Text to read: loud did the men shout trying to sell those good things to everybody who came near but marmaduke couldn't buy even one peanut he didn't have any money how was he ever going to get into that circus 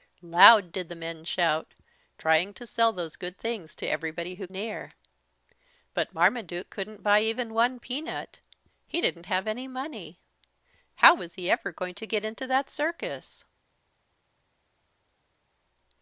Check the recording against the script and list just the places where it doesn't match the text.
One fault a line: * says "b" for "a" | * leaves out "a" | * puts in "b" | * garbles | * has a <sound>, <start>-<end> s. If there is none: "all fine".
* leaves out "came"